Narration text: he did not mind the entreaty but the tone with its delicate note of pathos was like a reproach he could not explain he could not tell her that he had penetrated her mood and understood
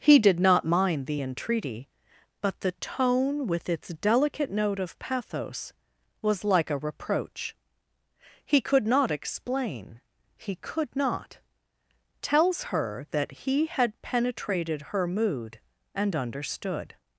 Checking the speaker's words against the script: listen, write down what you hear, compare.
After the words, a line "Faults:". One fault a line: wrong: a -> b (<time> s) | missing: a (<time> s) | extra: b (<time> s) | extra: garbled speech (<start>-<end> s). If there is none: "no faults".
he did not mind the entreaty but the tone with its delicate note of pathos was like a reproach he could not explain he could not tells her that he had penetrated her mood and understood
Faults:
wrong: tell -> tells (12.2 s)